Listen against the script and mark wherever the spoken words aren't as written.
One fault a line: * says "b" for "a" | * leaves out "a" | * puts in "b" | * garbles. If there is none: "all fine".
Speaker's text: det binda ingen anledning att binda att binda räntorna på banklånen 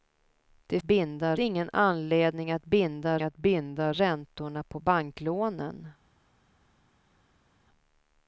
all fine